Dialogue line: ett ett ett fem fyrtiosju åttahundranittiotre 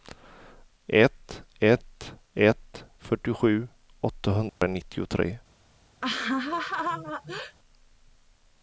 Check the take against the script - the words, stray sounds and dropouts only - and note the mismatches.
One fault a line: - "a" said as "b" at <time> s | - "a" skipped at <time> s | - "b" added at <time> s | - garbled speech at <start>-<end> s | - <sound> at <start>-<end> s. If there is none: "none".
- "fem" skipped at 2.8 s
- dropout at 4.5-4.6 s
- laugh at 6.0-7.6 s